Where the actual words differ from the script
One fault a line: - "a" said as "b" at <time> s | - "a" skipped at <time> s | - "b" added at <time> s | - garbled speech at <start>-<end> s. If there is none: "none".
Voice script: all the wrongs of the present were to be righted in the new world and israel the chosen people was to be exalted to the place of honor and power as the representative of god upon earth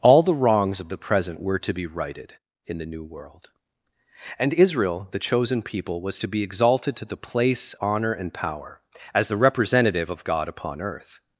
- "of" skipped at 7.8 s